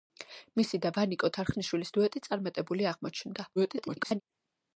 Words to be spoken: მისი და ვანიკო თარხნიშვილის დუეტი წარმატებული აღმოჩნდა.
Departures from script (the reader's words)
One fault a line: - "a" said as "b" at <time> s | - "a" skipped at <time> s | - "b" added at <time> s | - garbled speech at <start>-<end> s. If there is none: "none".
- garbled speech at 3.6-4.2 s